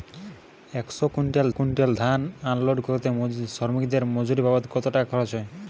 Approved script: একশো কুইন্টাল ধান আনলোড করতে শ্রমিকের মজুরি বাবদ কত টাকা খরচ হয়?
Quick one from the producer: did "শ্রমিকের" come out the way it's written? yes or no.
yes